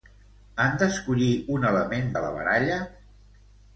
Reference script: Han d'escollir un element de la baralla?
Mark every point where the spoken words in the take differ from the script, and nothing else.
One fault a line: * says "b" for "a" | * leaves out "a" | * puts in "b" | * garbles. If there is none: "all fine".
all fine